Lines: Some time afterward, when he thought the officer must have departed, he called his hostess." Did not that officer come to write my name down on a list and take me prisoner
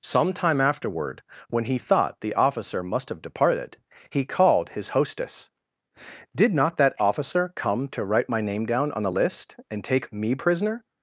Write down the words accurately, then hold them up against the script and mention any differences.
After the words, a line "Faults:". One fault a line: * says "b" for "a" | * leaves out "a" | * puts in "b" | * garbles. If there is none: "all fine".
Some time afterward, when he thought the officer must have departed, he called his hostess." Did not that officer come to write my name down on a list and take me prisoner
Faults:
all fine